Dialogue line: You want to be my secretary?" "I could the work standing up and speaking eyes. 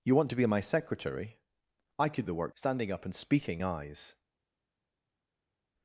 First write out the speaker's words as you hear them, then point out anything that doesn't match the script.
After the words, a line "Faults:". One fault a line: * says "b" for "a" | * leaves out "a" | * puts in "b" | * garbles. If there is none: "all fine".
You want to be my secretary?" "I could the work standing up and speaking eyes.
Faults:
all fine